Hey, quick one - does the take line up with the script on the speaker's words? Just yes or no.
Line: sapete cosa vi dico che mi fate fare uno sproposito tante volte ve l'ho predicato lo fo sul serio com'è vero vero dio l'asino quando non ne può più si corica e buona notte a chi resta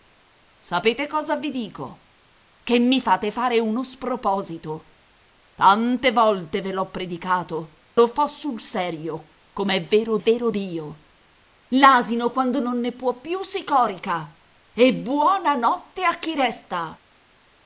yes